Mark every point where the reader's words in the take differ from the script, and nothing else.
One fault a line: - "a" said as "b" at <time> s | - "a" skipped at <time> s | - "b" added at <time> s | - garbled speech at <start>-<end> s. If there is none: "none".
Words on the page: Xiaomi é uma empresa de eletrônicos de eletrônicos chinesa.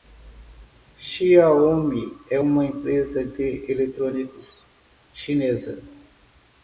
- "de eletrônicos" skipped at 4.8 s